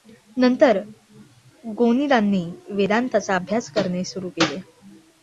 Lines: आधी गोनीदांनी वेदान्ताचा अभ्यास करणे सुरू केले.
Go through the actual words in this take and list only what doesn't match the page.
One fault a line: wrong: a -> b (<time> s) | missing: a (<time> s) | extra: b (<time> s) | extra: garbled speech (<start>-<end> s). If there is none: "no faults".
wrong: आधी -> नंतर (0.4 s)